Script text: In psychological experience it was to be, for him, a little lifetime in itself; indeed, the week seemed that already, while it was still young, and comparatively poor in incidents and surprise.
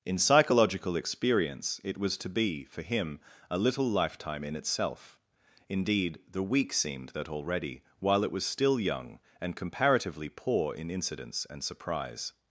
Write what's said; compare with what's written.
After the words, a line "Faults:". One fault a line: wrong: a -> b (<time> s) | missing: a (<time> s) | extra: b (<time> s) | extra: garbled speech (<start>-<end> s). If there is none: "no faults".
In psychological experience it was to be, for him, a little lifetime in itself; indeed, the week seemed that already, while it was still young, and comparatively poor in incidents and surprise.
Faults:
no faults